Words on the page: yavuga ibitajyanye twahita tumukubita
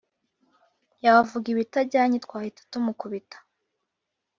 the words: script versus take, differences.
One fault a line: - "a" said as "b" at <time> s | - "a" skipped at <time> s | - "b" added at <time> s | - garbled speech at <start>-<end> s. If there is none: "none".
none